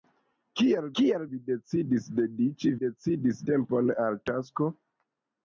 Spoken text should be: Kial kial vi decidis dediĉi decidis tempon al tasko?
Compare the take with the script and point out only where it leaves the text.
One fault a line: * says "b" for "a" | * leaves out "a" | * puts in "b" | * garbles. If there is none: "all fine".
all fine